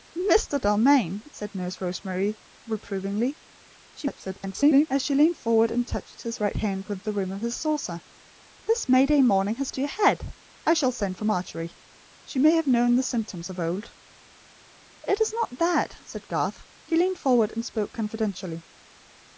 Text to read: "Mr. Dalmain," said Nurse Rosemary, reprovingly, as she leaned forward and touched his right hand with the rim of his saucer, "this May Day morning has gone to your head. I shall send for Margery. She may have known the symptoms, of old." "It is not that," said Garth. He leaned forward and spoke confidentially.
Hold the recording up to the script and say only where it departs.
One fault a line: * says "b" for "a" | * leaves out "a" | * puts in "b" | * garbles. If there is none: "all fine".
* garbles
* leaves out "gone"